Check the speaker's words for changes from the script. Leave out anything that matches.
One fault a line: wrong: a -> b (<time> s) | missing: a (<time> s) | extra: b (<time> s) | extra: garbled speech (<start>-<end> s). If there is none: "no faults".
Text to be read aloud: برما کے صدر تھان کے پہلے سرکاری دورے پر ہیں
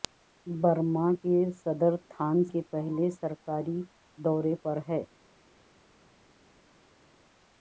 no faults